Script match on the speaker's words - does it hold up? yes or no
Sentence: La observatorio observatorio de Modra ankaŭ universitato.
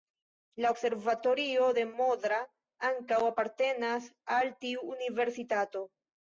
no